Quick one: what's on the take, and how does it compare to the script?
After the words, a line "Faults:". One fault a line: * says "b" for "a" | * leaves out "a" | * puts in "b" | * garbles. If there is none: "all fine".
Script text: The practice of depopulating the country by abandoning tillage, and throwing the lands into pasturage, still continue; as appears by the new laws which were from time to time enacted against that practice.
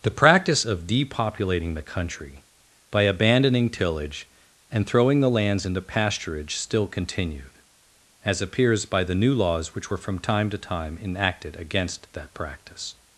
The practice of depopulating the country by abandoning tillage, and throwing the lands into pasturage, still continued; as appears by the new laws which were from time to time enacted against that practice.
Faults:
* says "continued" for "continue"